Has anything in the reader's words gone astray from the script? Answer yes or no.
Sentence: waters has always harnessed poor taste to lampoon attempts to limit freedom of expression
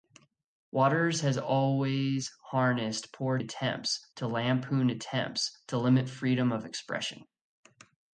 yes